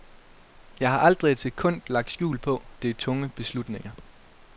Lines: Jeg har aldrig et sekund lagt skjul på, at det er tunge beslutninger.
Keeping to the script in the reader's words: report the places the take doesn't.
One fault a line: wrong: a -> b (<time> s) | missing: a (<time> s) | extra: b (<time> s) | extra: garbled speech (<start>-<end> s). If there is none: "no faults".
missing: at (2.6 s)